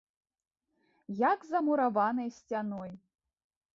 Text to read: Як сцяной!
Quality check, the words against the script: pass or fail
fail